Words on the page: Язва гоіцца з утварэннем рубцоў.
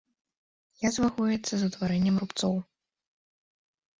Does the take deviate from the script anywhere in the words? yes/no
no